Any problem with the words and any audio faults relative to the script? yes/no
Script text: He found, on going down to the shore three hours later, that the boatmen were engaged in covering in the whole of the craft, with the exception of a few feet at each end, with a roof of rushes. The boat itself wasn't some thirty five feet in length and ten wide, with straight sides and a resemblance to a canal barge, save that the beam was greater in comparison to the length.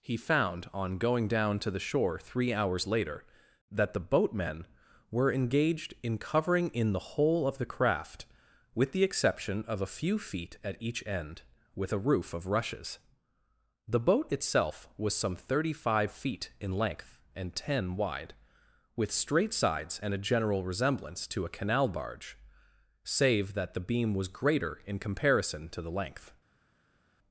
yes